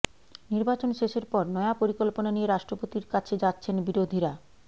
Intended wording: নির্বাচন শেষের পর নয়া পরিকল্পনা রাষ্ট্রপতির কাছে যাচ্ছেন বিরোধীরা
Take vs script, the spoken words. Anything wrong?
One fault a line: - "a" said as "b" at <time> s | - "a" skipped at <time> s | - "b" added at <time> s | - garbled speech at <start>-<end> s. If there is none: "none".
- "নিয়ে" added at 2.3 s